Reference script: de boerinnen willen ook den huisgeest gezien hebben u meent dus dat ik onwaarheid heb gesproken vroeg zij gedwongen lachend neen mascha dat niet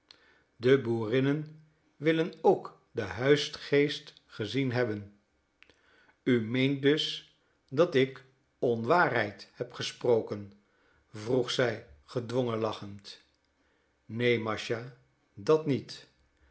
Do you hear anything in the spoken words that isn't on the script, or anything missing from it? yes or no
no